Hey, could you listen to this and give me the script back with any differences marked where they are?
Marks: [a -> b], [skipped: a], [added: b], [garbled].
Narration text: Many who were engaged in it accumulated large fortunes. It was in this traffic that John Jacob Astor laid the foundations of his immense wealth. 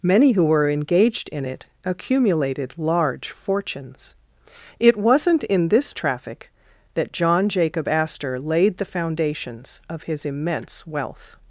Many who were engaged in it accumulated large fortunes. It [was -> wasn't] in this traffic that John Jacob Astor laid the foundations of his immense wealth.